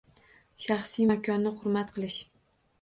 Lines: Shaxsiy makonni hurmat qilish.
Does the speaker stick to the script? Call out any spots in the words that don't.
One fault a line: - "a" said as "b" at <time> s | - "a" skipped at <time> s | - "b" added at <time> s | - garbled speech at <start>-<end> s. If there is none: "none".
none